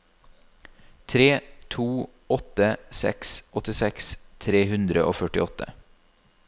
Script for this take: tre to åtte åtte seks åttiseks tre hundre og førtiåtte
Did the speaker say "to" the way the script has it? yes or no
yes